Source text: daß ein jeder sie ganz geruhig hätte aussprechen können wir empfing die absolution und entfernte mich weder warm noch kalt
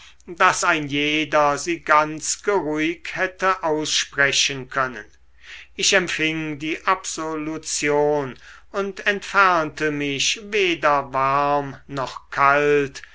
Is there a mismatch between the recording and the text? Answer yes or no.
yes